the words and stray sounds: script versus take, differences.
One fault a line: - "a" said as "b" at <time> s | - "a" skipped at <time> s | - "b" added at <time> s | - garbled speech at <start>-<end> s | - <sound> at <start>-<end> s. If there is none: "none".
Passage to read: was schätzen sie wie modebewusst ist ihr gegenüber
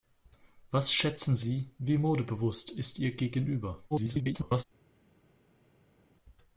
- garbled speech at 3.9-4.6 s